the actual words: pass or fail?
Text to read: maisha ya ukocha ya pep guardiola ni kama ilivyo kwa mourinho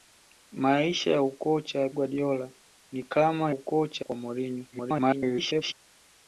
fail